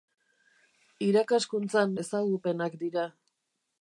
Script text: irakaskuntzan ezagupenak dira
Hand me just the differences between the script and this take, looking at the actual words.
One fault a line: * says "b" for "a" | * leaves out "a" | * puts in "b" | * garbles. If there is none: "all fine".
all fine